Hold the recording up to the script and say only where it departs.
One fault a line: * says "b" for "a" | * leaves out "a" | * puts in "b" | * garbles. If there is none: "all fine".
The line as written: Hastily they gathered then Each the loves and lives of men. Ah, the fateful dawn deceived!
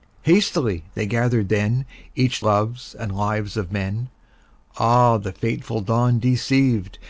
* leaves out "the"